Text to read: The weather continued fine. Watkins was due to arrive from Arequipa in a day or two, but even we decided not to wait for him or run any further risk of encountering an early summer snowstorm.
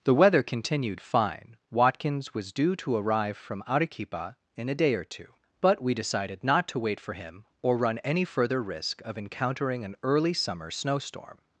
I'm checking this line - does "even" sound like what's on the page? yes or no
no